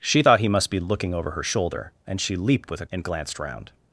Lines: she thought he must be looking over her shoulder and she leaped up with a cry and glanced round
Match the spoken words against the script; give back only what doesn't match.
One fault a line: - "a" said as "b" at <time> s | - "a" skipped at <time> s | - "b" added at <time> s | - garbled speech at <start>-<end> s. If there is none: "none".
- "up" skipped at 2.7 s
- "cry" skipped at 2.9 s